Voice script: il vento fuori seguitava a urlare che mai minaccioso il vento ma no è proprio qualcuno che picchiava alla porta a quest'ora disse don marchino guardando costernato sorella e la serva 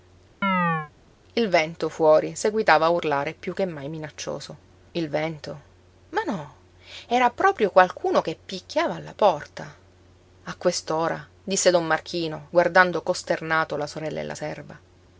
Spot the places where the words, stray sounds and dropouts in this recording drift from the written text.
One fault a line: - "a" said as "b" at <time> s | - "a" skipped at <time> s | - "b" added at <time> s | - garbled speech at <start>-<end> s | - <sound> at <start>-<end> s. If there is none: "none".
- chirp at 0.4-0.9 s
- "piú" added at 3.4 s
- "è" said as "era" at 7.1 s
- "la" added at 13.7 s